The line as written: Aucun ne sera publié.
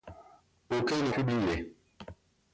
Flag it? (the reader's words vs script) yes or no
yes